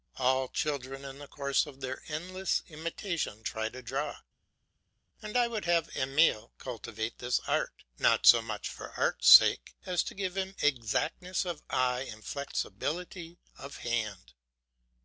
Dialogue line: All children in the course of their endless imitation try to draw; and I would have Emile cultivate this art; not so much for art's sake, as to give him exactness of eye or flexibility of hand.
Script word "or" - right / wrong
wrong